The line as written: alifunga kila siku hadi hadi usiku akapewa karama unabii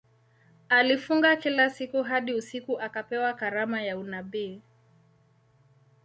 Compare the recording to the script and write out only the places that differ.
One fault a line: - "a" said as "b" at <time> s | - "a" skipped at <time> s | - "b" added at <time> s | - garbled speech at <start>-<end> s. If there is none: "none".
- "hadi" skipped at 2.3 s
- "ya" added at 3.8 s